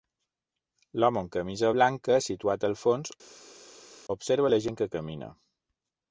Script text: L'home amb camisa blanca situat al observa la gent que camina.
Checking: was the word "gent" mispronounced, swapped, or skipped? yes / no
no